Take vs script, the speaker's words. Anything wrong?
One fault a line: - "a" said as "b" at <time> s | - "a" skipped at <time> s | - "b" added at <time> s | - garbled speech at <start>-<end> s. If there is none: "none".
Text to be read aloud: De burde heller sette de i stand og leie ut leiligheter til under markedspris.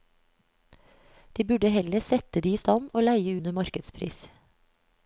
- "ut leiligheter til" skipped at 3.4 s